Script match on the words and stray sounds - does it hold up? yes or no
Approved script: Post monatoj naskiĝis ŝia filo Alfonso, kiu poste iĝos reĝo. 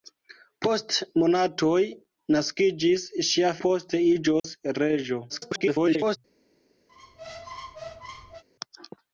no